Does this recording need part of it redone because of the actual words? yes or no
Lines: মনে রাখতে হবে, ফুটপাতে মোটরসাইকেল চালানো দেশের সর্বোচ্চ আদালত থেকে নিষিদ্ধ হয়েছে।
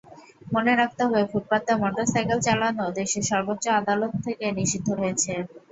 no